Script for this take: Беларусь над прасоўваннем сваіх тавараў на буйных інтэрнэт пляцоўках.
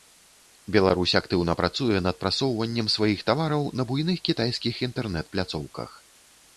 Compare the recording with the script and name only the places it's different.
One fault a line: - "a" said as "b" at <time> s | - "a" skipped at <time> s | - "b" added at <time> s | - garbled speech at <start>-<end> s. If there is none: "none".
- "актыўна працуе" added at 1.2 s
- "кітайскіх" added at 4.3 s